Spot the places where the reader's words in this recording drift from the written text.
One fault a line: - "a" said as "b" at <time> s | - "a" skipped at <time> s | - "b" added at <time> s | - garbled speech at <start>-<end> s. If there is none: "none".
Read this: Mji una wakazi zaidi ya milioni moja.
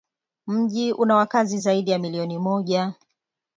none